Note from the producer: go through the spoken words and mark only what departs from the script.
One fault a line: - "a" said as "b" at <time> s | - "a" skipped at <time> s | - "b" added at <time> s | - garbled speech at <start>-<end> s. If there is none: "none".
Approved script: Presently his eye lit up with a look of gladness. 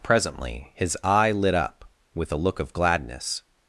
none